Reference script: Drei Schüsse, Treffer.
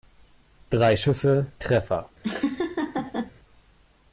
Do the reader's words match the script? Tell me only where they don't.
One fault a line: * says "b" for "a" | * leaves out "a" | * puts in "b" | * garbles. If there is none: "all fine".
all fine